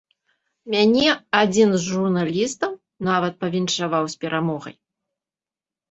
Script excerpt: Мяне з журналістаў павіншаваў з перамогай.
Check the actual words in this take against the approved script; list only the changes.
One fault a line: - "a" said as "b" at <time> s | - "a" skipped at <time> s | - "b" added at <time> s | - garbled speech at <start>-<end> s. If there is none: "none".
- "адзін" added at 1.4 s
- "нават" added at 3.1 s